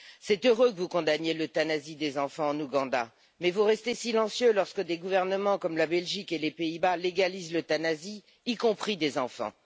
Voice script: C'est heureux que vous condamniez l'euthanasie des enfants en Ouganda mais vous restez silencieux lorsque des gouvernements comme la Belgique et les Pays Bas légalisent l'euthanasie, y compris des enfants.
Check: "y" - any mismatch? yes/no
no